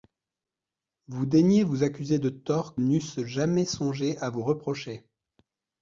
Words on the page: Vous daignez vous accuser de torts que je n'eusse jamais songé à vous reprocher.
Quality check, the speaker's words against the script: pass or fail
fail